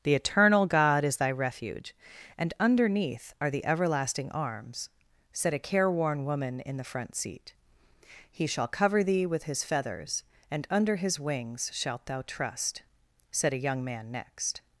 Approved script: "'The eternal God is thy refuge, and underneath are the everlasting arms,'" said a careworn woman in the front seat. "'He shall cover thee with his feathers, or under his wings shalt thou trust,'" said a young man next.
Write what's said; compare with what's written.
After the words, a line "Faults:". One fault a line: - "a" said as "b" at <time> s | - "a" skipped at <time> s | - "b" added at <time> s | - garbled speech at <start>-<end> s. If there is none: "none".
"'The eternal God is thy refuge, and underneath are the everlasting arms,'" said a careworn woman in the front seat. "'He shall cover thee with his feathers, and under his wings shalt thou trust,'" said a young man next.
Faults:
- "or" said as "and" at 10.5 s